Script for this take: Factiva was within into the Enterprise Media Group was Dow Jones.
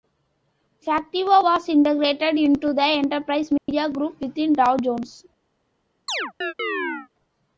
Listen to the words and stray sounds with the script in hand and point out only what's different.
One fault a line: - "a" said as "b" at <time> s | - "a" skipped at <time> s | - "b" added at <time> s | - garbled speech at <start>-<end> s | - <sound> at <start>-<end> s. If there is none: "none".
- "within" said as "integrated" at 1.7 s
- dropout at 3.6-3.7 s
- "was" said as "within" at 4.2 s
- chirp at 6.1-7.1 s